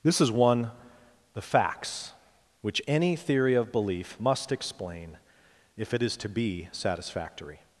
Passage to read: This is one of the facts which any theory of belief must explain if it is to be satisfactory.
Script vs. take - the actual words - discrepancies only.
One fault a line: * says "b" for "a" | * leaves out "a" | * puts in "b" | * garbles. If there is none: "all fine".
* leaves out "of"